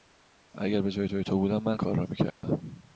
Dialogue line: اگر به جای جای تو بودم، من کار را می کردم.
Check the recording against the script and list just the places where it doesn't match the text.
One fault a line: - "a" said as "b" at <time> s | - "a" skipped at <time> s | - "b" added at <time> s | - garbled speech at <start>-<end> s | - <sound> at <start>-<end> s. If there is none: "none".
- dropout at 2.3-2.4 s